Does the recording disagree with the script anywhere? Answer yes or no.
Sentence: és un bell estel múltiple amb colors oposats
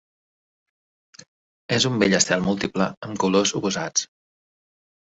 no